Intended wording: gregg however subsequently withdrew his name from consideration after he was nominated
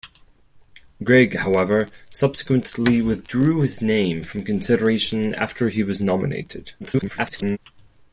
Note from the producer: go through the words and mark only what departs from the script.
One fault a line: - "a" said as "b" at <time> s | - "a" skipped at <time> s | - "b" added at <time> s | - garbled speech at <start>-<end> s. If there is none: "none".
- garbled speech at 6.8-7.6 s